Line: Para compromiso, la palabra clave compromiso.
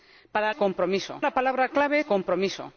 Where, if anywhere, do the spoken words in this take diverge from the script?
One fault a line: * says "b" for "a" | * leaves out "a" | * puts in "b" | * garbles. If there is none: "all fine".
all fine